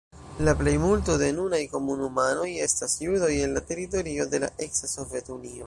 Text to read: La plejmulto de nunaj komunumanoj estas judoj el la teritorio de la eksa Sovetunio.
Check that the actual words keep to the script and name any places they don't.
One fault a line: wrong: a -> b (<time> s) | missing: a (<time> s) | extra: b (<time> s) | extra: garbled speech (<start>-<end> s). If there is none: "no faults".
no faults